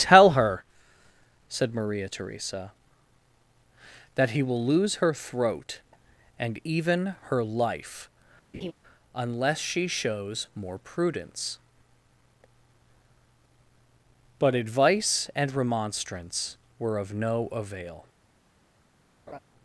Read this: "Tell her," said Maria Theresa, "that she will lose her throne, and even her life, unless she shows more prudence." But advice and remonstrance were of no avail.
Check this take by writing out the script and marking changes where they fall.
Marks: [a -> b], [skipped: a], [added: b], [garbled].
"Tell her," said Maria Theresa, "that [she -> he] will lose her [throne, -> throat] and even her life, unless she shows more prudence." But advice and remonstrance were of no avail.